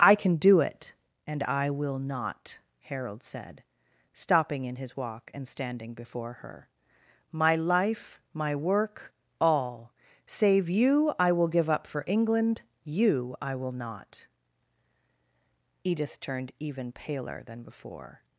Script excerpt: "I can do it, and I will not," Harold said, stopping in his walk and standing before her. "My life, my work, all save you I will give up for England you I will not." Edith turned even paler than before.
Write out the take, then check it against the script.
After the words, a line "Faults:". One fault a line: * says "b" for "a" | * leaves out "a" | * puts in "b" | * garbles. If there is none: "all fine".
"I can do it, and I will not," Harold said, stopping in his walk and standing before her. "My life, my work, all save you I will give up for England you I will not." Edith turned even paler than before.
Faults:
all fine